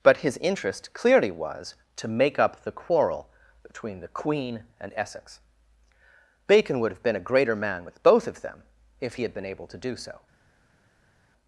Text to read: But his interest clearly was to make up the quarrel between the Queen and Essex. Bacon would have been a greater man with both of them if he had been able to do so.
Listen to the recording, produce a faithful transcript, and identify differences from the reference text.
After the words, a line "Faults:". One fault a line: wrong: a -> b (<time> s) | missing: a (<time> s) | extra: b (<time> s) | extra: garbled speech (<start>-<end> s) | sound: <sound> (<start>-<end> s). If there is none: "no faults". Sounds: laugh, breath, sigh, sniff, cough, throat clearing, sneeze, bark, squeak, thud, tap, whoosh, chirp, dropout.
But his interest clearly was to make up the quarrel between the Queen and Essex. Bacon would have been a greater man with both of them if he had been able to do so.
Faults:
no faults